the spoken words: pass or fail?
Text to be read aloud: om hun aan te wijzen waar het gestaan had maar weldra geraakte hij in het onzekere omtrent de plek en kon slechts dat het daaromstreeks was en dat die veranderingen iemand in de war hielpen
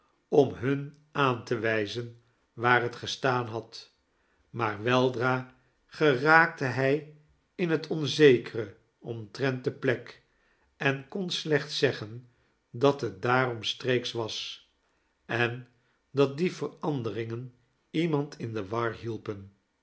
fail